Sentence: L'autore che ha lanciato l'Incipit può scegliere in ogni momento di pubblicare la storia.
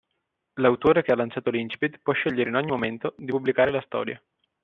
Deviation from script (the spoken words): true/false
false